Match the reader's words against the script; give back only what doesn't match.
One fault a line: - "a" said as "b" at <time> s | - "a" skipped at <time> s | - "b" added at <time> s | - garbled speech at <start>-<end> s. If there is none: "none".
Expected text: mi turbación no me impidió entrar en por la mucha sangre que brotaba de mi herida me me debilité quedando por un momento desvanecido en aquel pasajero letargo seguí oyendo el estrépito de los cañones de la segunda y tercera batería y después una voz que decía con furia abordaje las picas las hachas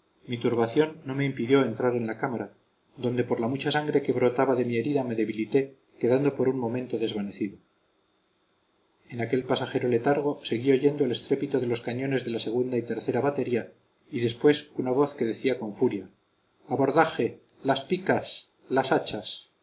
- "la cámara donde" added at 2.1 s
- "me" skipped at 5.2 s